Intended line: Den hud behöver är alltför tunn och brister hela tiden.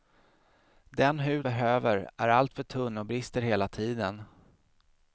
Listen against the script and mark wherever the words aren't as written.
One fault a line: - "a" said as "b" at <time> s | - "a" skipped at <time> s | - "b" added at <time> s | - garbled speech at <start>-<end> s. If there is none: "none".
none